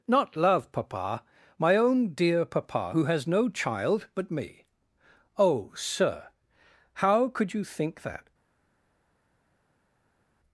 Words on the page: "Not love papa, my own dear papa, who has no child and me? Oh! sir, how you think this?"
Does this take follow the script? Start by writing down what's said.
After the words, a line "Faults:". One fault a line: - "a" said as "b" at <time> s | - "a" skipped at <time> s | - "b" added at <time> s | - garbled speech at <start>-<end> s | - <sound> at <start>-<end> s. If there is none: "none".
"Not love papa, my own dear papa, who has no child but me? Oh! sir, how could you think that?"
Faults:
- "and" said as "but" at 4.2 s
- "could" added at 7.3 s
- "this" said as "that" at 8.0 s